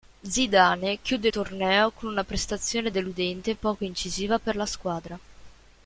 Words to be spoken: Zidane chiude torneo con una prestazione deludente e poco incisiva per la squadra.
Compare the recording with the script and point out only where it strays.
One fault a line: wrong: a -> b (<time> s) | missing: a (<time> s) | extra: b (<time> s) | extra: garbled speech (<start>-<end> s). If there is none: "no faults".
no faults